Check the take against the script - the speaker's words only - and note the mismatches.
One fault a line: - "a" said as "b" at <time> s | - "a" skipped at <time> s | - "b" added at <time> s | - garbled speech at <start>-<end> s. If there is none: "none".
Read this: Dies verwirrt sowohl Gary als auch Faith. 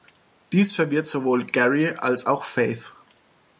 none